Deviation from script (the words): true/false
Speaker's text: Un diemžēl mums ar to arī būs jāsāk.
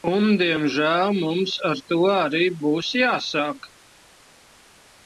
false